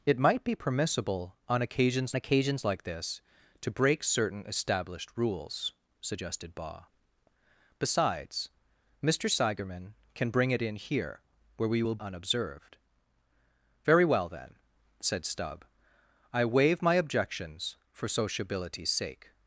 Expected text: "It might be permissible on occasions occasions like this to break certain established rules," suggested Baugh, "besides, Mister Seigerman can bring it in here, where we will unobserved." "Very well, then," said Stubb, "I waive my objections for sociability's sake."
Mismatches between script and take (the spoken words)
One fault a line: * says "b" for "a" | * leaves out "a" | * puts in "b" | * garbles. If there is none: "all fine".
all fine